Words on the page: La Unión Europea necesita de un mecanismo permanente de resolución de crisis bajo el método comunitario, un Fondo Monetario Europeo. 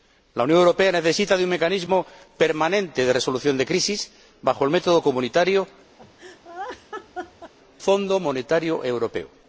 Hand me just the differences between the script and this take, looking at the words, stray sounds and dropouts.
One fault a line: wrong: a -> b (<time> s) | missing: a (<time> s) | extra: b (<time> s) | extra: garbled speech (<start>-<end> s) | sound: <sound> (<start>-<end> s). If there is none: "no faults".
missing: un (5.7 s)
sound: laugh (6.0-7.5 s)